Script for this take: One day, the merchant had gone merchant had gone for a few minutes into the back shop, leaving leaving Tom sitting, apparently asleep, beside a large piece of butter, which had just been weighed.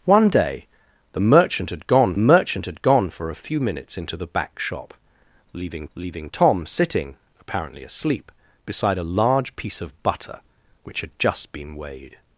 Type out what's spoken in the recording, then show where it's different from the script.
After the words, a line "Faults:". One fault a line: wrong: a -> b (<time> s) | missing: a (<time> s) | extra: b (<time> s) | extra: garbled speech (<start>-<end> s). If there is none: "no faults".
One day, the merchant had gone merchant had gone for a few minutes into the back shop, leaving leaving Tom sitting, apparently asleep, beside a large piece of butter, which had just been weighed.
Faults:
no faults